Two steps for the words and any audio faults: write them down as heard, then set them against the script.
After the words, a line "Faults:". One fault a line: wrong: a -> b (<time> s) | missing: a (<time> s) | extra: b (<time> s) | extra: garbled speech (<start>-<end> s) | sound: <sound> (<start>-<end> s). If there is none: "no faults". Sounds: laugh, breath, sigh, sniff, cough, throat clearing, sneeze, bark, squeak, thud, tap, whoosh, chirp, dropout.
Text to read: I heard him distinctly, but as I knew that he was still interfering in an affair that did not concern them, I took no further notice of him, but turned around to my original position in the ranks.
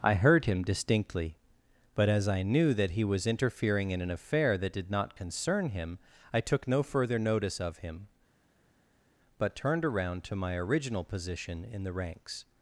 I heard him distinctly, but as I knew that he was interfering in an affair that did not concern him, I took no further notice of him, but turned around to my original position in the ranks.
Faults:
missing: still (3.3 s)
wrong: them -> him (5.7 s)